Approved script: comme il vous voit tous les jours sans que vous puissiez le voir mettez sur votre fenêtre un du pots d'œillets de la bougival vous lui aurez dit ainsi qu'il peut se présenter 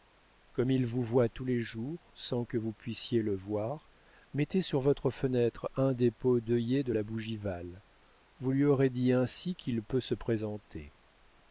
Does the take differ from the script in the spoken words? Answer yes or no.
yes